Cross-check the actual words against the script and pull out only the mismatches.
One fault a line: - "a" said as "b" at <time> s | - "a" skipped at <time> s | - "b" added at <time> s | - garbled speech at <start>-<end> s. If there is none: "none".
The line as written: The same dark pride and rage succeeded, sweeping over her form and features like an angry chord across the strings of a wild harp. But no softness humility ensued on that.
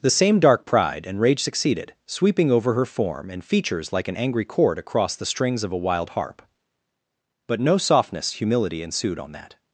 none